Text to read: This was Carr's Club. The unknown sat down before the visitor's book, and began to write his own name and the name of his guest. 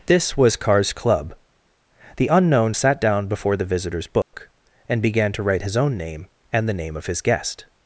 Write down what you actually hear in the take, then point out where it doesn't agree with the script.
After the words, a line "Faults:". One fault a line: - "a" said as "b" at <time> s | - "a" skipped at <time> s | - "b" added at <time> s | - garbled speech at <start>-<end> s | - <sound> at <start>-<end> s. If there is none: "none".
This was Carr's Club. The unknown sat down before the visitor's book, and began to write his own name and the name of his guest.
Faults:
- dropout at 4.2-4.3 s